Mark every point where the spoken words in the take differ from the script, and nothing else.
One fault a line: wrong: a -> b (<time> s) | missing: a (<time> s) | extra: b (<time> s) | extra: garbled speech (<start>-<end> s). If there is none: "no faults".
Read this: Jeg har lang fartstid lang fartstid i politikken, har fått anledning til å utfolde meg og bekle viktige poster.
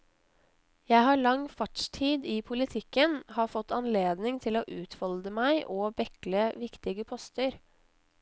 missing: lang fartstid (2.2 s)